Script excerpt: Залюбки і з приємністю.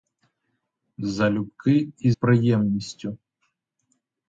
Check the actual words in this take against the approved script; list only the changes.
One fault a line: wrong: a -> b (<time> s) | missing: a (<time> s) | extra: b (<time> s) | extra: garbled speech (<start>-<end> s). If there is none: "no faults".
missing: з (2.1 s)